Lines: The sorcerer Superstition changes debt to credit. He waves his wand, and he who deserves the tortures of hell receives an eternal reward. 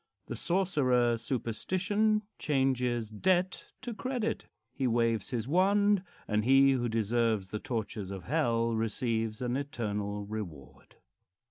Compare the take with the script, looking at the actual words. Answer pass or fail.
pass